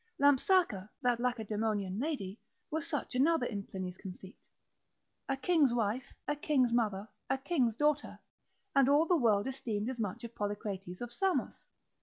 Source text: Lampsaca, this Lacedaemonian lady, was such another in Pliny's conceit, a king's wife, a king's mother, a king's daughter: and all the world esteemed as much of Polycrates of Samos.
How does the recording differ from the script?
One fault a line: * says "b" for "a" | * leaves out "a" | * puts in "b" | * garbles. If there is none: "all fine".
* says "that" for "this"